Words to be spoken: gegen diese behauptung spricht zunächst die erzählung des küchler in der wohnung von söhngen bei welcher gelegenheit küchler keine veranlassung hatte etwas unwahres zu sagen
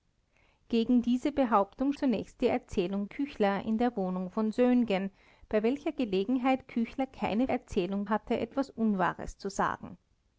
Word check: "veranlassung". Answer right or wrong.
wrong